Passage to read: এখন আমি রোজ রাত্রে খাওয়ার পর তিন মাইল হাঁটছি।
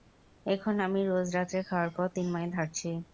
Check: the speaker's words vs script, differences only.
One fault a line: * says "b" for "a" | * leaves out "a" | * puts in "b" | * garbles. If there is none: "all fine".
all fine